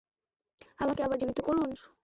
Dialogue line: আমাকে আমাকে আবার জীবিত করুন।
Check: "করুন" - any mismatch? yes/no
no